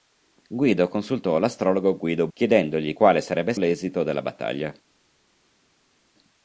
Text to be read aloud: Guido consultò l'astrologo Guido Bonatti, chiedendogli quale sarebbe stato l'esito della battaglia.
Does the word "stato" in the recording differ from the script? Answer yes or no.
yes